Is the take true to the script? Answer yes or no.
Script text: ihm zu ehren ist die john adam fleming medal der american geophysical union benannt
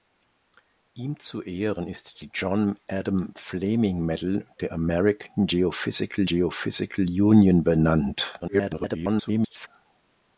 no